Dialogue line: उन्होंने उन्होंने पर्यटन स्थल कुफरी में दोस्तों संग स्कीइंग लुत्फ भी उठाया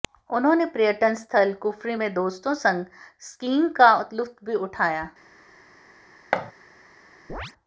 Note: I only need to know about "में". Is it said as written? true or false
true